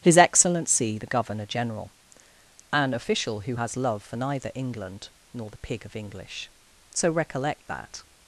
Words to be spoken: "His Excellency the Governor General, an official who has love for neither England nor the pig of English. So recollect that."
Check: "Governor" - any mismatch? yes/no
no